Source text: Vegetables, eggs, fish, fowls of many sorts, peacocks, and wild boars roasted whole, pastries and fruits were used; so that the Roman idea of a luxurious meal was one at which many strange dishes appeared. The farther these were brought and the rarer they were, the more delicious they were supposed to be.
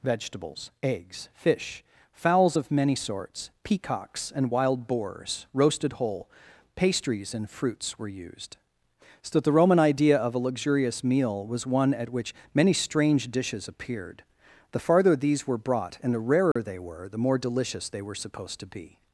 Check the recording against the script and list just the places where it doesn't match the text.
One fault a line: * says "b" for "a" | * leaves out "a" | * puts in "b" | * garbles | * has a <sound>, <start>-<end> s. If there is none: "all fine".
* has a dropout, 16.5-16.6 s